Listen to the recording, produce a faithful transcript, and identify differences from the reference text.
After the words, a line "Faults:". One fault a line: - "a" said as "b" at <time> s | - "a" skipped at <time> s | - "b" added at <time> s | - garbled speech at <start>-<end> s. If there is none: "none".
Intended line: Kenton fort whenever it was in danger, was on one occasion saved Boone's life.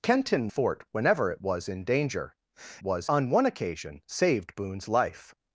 Kenton fort whenever it was in danger, was on one occasion saved Boone's life.
Faults:
none